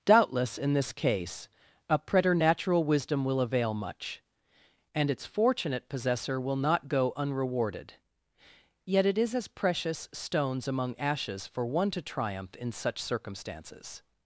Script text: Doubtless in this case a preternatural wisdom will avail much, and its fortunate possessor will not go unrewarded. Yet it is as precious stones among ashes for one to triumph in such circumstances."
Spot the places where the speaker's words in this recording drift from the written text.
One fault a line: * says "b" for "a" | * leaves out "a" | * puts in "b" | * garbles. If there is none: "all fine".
all fine